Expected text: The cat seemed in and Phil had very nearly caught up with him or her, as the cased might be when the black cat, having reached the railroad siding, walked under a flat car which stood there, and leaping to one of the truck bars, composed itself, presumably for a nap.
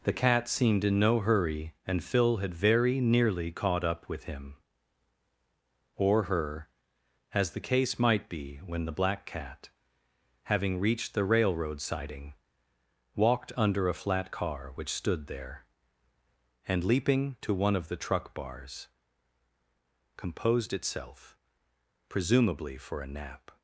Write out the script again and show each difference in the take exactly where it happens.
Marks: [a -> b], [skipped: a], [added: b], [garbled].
The cat seemed in [added: no hurry] and Phil had very nearly caught up with him or her, as the [cased -> case] might be when the black cat, having reached the railroad siding, walked under a flat car which stood there, and leaping to one of the truck bars, composed itself, presumably for a nap.